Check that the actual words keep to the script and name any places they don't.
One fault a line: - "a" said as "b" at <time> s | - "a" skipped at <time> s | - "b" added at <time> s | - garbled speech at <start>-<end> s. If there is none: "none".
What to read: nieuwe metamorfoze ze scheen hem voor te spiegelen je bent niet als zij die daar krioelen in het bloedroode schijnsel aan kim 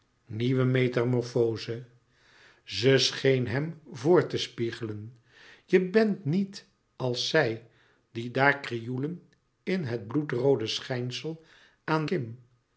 none